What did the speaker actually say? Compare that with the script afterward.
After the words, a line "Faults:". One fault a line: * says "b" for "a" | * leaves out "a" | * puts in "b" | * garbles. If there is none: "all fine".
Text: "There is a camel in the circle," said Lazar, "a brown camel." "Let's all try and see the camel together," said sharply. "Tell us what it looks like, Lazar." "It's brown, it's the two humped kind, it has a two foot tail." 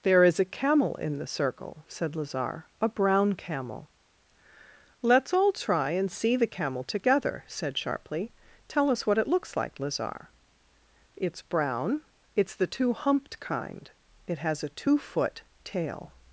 "There is a camel in the circle," said Lazar, "a brown camel." "Let's all try and see the camel together," said sharply. "Tell us what it looks like, Lazar." "It's brown, it's the two humped kind, it has a two foot tail."
Faults:
all fine